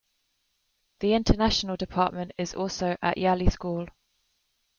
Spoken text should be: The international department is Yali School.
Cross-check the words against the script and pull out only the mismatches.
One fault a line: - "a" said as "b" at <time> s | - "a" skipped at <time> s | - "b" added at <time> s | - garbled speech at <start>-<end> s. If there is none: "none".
- "also at" added at 2.5 s